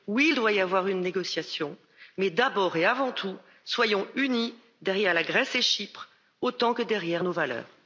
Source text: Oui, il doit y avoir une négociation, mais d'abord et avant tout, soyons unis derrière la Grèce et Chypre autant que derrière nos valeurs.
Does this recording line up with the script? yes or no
yes